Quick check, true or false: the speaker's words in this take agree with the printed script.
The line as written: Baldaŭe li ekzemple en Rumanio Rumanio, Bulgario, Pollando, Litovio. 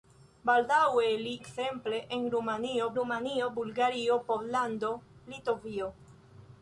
true